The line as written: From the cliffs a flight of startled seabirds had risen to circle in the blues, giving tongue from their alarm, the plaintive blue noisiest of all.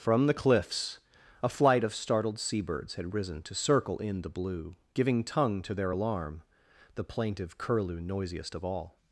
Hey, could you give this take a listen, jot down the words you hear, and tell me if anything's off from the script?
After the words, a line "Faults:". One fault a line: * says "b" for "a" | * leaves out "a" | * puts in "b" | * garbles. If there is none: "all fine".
From the cliffs a flight of startled seabirds had risen to circle in the blue, giving tongue to their alarm, the plaintive curlew noisiest of all.
Faults:
* says "blue" for "blues"
* says "to" for "from"
* says "curlew" for "blue"